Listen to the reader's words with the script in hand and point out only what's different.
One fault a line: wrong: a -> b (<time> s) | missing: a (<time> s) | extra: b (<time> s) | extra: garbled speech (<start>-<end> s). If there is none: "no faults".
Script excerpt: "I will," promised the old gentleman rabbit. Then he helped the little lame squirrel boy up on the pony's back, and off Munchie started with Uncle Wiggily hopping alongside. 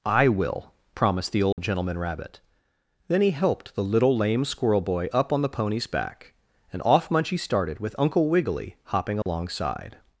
no faults